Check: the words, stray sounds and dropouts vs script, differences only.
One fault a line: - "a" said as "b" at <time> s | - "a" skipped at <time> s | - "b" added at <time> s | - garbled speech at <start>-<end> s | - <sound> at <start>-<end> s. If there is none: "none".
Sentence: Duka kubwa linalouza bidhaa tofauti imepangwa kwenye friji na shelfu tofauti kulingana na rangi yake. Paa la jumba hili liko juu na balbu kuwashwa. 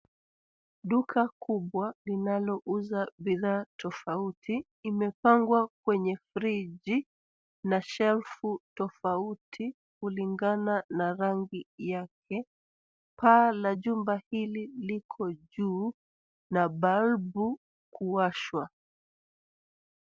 none